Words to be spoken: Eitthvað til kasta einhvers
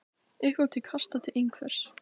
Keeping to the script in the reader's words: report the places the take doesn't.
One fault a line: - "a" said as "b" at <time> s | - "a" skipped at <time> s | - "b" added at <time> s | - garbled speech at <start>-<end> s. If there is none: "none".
none